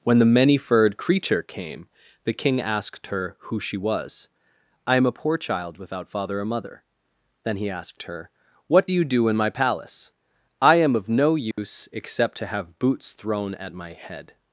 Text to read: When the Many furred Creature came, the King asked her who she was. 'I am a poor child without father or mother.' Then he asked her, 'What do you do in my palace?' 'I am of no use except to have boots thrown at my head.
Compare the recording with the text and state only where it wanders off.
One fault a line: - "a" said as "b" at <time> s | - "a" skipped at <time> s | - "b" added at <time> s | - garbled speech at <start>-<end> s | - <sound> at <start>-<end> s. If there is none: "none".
- dropout at 11.5-11.6 s